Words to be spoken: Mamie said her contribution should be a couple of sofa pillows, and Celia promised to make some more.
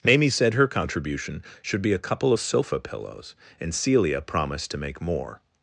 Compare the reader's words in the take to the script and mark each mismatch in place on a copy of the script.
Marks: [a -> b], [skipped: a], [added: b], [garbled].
Mamie said her contribution should be a couple of sofa pillows, and Celia promised to make [skipped: some] more.